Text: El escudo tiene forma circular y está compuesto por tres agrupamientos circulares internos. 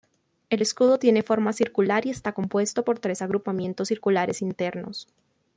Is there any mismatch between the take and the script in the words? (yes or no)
no